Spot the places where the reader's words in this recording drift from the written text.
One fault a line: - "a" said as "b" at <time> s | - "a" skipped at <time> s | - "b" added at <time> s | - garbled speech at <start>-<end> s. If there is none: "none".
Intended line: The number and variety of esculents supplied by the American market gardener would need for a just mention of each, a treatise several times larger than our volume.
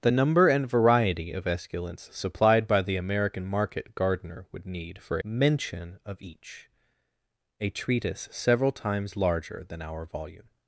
- "a just" skipped at 5.2 s